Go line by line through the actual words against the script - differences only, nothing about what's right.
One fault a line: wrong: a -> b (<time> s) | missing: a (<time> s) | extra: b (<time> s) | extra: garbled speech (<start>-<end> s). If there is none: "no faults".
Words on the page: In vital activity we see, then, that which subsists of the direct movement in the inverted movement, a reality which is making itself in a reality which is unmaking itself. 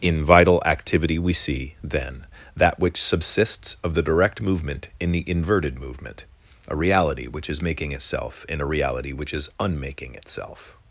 no faults